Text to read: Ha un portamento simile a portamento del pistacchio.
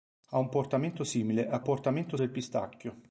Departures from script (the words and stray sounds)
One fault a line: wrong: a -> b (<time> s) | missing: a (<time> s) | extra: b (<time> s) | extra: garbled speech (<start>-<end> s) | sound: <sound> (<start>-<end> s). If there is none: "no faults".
no faults